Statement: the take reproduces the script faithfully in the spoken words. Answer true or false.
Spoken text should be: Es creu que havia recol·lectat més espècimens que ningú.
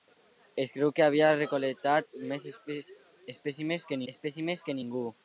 false